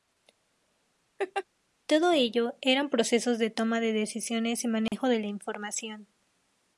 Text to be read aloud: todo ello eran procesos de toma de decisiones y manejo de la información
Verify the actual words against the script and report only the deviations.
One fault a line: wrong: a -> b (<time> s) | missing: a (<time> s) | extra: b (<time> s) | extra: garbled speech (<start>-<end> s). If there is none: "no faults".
no faults